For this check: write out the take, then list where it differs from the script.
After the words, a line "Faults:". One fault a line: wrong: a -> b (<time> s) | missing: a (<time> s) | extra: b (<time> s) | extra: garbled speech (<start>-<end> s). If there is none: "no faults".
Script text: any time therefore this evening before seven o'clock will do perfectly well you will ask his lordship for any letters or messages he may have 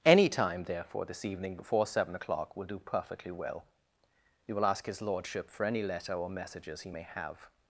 any time therefore this evening before seven o'clock will do perfectly well you will ask his lordship for any letter or messages he may have
Faults:
wrong: letters -> letter (5.8 s)